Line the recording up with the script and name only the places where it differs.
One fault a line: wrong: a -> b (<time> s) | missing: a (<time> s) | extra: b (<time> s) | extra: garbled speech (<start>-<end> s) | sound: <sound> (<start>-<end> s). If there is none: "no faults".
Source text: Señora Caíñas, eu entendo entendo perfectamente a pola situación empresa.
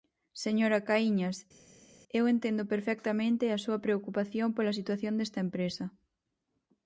missing: entendo (2.6 s)
extra: súa preocupación (3.6 s)
extra: desta (5.2 s)